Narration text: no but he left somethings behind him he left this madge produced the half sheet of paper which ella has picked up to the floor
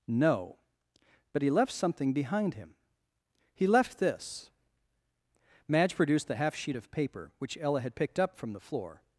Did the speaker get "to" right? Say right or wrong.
wrong